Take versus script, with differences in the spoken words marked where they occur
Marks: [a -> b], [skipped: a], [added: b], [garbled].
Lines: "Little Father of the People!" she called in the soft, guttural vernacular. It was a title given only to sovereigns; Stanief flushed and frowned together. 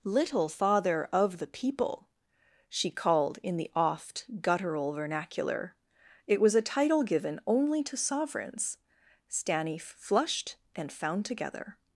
"Little Father of the People!" she called in the [soft, -> oft] guttural vernacular. It was a title given only to sovereigns; Stanief flushed and [frowned -> found] together.